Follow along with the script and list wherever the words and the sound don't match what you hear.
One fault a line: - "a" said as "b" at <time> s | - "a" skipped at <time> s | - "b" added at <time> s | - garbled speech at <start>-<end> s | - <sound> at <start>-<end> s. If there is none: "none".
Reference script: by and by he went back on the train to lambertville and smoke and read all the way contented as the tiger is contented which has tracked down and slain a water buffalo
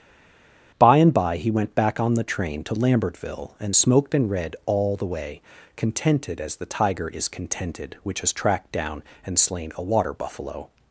- "smoke" said as "smoked" at 3.7 s